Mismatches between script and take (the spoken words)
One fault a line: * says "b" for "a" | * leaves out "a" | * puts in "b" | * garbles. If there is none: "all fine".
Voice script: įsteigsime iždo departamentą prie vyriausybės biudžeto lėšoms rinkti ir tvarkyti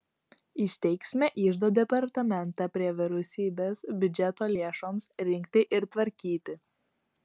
all fine